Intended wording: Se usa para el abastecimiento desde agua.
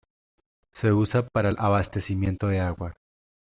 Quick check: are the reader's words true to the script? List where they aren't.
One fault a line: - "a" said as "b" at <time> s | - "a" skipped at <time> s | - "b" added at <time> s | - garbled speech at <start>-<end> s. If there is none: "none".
- "desde" said as "de" at 2.5 s